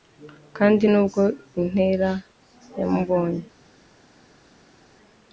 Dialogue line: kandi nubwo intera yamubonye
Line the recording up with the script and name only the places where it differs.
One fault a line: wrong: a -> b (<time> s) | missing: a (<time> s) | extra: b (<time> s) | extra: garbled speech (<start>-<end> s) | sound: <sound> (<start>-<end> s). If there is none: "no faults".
no faults